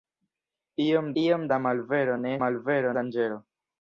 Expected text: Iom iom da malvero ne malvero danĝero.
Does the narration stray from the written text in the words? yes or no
no